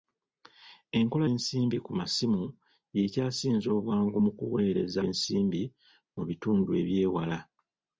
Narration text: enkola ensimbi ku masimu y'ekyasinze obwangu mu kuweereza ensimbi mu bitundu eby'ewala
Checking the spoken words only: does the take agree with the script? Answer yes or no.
yes